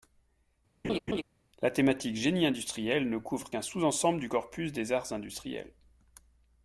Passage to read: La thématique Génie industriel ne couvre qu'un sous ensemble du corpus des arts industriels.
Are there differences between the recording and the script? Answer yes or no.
no